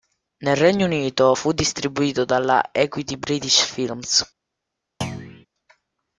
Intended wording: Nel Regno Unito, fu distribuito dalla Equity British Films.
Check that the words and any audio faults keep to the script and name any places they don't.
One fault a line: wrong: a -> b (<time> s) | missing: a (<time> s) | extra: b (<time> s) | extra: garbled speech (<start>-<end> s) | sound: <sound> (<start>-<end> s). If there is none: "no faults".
sound: thud (5.0-5.5 s)